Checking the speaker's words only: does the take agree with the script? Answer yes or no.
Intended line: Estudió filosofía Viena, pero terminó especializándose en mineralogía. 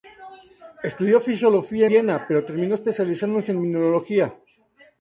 yes